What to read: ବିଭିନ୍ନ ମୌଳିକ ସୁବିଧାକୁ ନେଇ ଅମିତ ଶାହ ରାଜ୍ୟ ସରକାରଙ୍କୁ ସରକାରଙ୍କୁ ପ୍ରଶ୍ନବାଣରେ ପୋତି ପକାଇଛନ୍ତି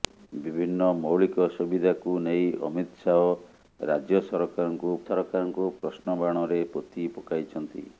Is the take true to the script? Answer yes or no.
yes